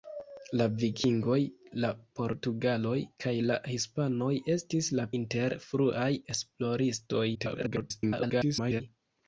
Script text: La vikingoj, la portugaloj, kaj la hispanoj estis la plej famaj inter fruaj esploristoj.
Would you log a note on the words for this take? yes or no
yes